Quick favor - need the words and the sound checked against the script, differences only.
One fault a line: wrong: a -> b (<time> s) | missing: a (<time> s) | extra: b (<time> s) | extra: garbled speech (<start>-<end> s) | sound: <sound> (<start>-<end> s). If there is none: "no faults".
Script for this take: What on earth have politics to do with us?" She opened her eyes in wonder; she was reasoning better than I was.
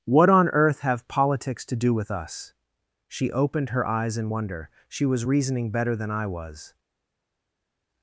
no faults